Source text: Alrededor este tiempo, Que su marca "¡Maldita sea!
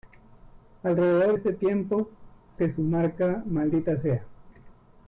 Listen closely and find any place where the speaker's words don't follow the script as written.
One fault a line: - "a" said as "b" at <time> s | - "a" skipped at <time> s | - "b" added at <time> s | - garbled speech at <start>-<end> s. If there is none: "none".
none